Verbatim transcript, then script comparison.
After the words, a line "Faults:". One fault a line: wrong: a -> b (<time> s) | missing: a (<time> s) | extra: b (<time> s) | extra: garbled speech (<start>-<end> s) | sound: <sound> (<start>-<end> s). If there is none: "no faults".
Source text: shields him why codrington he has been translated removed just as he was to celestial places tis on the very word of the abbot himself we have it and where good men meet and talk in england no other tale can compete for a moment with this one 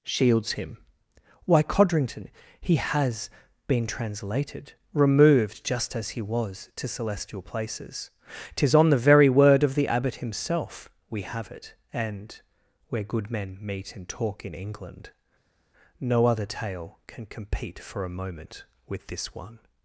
shields him why codrington he has been translated removed just as he was to celestial places tis on the very word of the abbot himself we have it and where good men meet and talk in england no other tale can compete for a moment with this one
Faults:
no faults